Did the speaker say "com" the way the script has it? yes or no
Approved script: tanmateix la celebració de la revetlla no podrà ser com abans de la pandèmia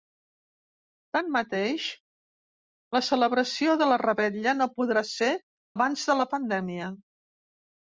no